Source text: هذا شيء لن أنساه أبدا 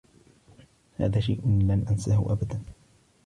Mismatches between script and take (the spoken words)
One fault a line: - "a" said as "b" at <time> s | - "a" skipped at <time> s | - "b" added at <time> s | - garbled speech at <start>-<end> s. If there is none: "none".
none